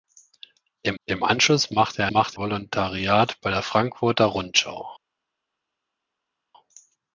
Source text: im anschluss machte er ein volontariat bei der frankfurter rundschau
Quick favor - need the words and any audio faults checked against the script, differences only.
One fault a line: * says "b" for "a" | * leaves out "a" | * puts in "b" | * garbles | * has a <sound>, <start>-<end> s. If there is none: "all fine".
* puts in "im"
* says "machte" for "ein"